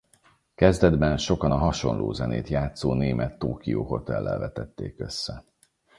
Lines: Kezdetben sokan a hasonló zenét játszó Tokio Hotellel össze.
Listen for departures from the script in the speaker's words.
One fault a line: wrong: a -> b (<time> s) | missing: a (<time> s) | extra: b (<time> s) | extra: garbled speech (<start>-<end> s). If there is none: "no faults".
extra: német (2.9 s)
extra: vetették (4.4 s)